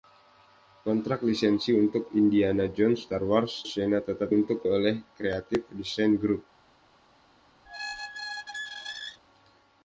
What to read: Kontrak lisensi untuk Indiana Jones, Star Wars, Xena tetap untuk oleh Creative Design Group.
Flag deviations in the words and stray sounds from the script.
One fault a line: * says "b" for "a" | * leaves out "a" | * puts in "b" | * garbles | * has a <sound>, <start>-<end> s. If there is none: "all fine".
* has a squeak, 7.7-9.2 s